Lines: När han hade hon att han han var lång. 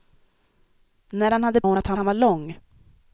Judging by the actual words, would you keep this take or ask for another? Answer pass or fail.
pass